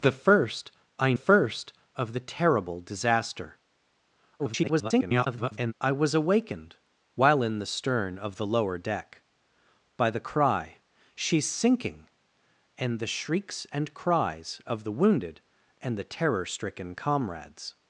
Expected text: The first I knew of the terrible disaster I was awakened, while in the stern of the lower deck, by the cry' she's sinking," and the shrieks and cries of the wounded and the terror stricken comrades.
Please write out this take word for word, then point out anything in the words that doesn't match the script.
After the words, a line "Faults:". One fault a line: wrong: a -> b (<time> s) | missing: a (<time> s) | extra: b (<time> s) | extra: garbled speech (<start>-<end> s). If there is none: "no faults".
The first I first of the terrible disaster [garbled] I was awakened, while in the stern of the lower deck, by the cry' she's sinking," and the shrieks and cries of the wounded and the terror stricken comrades.
Faults:
wrong: knew -> first (1.1 s)
extra: garbled speech (4.4-5.7 s)